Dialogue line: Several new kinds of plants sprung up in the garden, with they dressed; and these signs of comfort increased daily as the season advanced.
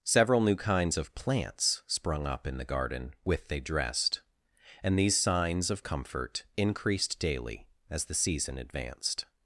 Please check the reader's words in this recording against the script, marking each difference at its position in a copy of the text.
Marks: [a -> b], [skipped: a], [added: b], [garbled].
Several new kinds of plants sprung up in the garden, with they dressed; and these signs of comfort increased daily as the season advanced.